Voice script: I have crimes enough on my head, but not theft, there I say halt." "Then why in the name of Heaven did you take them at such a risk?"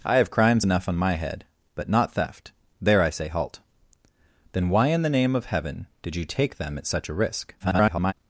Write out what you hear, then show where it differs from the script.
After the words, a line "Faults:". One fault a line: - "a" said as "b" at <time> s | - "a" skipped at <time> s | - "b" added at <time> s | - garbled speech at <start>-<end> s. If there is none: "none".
I have crimes enough on my head, but not theft, there I say halt." "Then why in the name of Heaven did you take them at such a risk?" [garbled]
Faults:
- garbled speech at 7.6-8.1 s